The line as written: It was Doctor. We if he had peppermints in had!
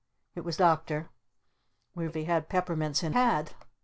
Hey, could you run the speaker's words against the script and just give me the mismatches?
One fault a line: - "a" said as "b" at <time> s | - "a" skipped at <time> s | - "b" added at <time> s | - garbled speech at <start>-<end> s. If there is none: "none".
none